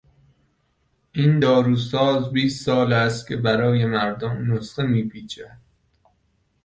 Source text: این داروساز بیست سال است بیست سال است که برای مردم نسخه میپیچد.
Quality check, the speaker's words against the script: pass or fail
fail